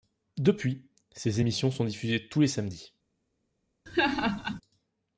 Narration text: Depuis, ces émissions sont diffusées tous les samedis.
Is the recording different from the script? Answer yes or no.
no